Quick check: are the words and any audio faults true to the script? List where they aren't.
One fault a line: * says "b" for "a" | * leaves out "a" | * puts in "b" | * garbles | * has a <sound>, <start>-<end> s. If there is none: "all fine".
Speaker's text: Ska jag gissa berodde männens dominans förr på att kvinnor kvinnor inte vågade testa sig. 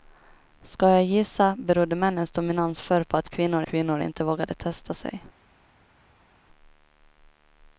all fine